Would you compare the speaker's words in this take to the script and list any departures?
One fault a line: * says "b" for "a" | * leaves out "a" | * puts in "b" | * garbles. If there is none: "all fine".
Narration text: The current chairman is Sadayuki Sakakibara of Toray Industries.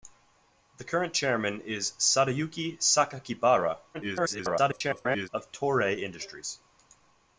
* garbles